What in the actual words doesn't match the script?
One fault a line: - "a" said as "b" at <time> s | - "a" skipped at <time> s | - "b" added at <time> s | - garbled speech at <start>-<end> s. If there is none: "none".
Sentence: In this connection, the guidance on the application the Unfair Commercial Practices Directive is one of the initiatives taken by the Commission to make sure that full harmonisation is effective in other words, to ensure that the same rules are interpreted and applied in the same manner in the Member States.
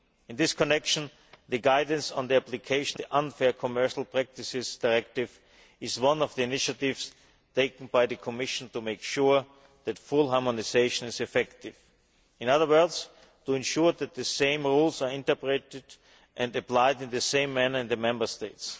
none